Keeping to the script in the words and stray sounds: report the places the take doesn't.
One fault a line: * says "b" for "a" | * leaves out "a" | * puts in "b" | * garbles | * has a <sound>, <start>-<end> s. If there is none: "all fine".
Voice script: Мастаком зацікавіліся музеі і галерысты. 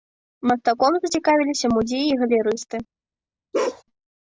* has a bark, 3.5-3.8 s